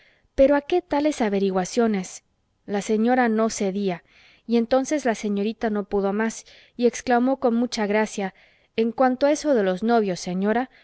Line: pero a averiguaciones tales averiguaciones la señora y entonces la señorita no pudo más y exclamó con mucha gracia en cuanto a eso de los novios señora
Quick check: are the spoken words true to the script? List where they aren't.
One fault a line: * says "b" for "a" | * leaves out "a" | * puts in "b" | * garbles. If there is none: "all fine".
* says "qué" for "averiguaciones"
* puts in "no cedía"